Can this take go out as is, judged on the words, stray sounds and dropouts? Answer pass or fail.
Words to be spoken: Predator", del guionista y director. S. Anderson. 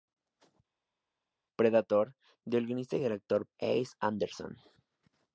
pass